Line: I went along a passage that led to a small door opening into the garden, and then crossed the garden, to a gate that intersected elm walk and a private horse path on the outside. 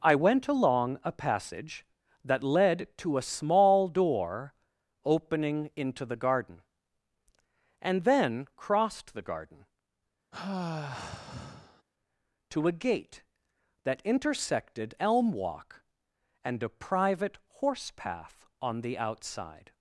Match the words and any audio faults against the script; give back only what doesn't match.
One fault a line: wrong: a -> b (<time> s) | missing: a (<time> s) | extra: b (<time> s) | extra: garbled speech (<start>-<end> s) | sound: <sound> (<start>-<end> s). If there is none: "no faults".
sound: sigh (10.3-11.8 s)